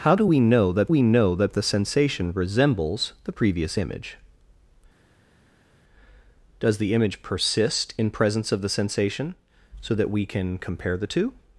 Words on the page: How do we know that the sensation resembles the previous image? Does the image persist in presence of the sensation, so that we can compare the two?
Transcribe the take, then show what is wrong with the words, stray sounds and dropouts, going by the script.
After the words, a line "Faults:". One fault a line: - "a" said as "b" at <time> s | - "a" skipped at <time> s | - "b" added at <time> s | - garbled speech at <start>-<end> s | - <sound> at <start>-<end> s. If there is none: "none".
How do we know that we know that the sensation resembles the previous image? Does the image persist in presence of the sensation, so that we can compare the two?
Faults:
- "we know that" added at 0.9 s